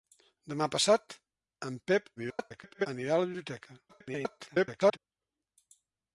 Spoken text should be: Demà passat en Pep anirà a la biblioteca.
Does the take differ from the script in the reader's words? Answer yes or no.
yes